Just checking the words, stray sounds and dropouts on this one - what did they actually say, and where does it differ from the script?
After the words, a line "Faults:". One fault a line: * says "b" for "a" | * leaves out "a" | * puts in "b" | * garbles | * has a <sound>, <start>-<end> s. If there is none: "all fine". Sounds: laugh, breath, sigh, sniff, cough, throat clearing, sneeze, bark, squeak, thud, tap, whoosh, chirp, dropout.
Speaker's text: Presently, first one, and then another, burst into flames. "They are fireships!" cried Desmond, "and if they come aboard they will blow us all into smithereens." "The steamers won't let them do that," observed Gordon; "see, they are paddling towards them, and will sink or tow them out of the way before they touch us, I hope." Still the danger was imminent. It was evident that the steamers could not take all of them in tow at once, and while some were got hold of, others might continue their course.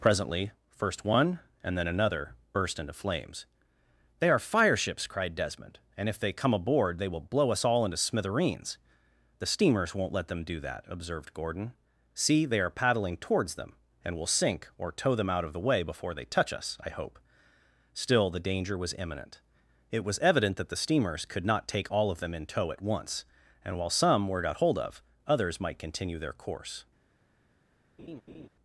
Presently, first one, and then another, burst into flames. "They are fireships!" cried Desmond, "and if they come aboard they will blow us all into smithereens." "The steamers won't let them do that," observed Gordon; "see, they are paddling towards them, and will sink or tow them out of the way before they touch us, I hope." Still the danger was imminent. It was evident that the steamers could not take all of them in tow at once, and while some were got hold of, others might continue their course.
Faults:
* has a laugh, 28.0-28.5 s